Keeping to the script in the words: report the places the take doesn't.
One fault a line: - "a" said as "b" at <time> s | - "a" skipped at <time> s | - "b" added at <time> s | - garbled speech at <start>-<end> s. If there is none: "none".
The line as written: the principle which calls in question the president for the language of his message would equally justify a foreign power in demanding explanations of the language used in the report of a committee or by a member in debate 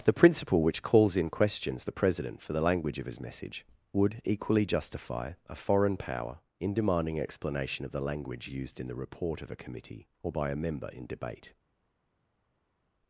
- "question" said as "questions" at 1.3 s
- "explanations" said as "explanation" at 7.2 s